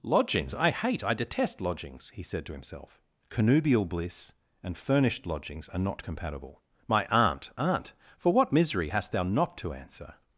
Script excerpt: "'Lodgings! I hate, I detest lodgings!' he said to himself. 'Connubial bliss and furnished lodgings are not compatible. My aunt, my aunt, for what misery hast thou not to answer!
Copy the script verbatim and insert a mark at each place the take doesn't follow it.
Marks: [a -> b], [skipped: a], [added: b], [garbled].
"'Lodgings! I hate, I detest lodgings!' he said to himself. 'Connubial bliss and furnished lodgings are not compatible. My aunt, [skipped: my] aunt, for what misery hast thou not to answer!